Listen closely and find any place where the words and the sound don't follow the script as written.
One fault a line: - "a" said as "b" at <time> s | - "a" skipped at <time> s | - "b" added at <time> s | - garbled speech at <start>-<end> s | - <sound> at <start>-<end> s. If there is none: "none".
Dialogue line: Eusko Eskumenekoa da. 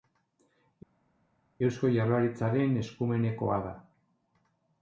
- "Jaurlaritzaren" added at 1.9 s